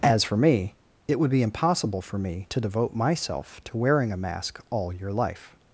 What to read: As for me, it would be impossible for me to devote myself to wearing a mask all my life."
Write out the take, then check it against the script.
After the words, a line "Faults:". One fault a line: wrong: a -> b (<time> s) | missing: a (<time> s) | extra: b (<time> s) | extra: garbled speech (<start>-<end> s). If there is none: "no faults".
As for me, it would be impossible for me to devote myself to wearing a mask all your life."
Faults:
wrong: my -> your (4.9 s)